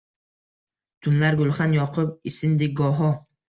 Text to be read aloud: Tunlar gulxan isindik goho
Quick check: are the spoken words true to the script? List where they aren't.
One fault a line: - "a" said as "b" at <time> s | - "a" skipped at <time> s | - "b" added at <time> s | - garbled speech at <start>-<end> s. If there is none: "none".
- "yoqib" added at 1.8 s